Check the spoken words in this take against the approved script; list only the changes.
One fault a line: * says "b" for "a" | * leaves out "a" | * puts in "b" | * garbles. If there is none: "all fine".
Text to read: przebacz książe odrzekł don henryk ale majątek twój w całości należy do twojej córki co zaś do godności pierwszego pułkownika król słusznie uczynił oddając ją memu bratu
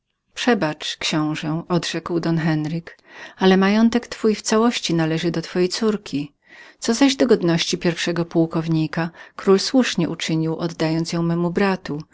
all fine